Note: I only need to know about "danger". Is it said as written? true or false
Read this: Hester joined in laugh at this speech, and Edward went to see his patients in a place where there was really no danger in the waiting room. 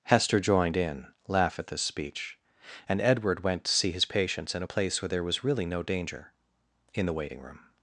true